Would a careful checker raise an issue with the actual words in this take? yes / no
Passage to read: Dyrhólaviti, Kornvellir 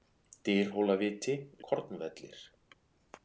no